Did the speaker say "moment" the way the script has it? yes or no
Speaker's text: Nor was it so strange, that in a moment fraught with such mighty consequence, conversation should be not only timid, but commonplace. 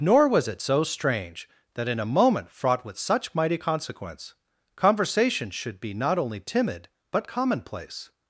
yes